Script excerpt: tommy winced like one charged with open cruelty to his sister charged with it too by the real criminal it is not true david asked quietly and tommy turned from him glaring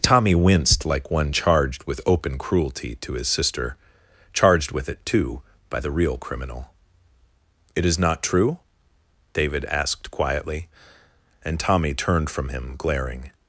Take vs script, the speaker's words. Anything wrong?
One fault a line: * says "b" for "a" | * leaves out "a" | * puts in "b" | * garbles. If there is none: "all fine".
all fine